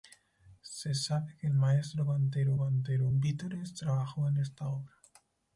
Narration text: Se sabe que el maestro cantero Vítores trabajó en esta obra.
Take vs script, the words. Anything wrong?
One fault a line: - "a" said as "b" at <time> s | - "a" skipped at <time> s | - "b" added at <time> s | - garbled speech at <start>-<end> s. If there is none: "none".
- "cantero" added at 2.6 s